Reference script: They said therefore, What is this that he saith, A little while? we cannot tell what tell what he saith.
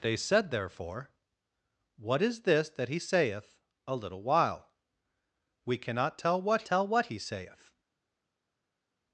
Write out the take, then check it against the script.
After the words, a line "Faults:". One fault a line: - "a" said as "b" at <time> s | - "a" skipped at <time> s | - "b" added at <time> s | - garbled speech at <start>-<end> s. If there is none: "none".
They said therefore, What is this that he saith, A little while? we cannot tell what tell what he saith.
Faults:
none